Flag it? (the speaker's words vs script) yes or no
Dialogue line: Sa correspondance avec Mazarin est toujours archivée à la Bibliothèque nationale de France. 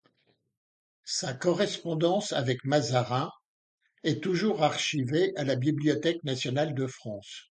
no